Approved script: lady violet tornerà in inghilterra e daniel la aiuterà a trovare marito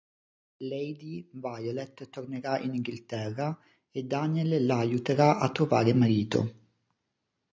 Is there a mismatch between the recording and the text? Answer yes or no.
no